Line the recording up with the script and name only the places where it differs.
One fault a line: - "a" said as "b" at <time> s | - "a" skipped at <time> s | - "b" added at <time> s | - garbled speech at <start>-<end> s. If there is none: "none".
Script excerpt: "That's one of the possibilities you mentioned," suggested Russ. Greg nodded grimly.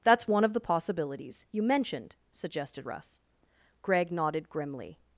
none